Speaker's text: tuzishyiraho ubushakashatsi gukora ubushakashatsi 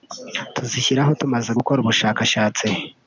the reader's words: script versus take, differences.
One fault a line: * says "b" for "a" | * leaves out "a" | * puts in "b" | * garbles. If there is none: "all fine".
* says "tumaze" for "ubushakashatsi"